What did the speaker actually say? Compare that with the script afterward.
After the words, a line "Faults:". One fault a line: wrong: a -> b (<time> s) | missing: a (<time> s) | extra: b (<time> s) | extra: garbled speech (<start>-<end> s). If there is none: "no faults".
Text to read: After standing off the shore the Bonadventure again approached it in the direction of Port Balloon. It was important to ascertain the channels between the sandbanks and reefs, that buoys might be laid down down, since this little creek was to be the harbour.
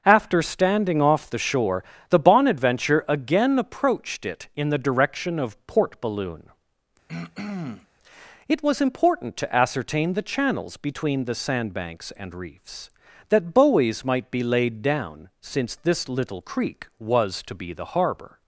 After standing off the shore the Bonadventure again approached it in the direction of Port Balloon. It was important to ascertain the channels between the sandbanks and reefs, that buoys might be laid down, since this little creek was to be the harbour.
Faults:
missing: down (15.3 s)